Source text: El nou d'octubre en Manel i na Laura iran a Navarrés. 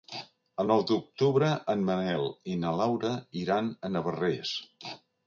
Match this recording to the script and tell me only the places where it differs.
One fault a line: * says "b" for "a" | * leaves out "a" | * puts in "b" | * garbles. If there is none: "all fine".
all fine